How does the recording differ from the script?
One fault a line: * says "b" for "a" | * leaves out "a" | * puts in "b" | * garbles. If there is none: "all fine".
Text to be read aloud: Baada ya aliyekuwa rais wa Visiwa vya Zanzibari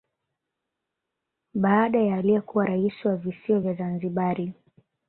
all fine